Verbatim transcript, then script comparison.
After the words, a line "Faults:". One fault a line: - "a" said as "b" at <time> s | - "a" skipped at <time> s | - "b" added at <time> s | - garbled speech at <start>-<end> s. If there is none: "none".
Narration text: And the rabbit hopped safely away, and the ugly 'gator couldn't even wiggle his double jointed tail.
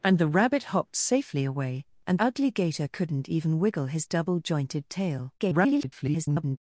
And the rabbit hopped safely away, and ugly 'gator couldn't even wiggle his double jointed tail. [garbled]
Faults:
- "the" skipped at 2.2 s
- garbled speech at 5.4-6.6 s